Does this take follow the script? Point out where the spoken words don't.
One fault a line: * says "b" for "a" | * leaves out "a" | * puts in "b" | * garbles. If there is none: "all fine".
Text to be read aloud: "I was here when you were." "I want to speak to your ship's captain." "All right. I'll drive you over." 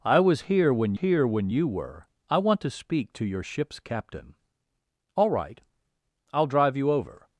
* puts in "here when"